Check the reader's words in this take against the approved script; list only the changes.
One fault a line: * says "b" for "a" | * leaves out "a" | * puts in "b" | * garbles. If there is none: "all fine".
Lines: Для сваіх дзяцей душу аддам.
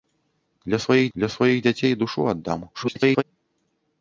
* puts in "для сваіх"
* garbles